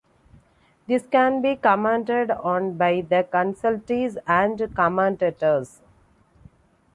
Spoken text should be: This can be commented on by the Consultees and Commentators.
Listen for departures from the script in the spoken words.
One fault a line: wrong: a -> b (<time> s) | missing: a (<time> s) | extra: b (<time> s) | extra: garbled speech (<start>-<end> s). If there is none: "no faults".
no faults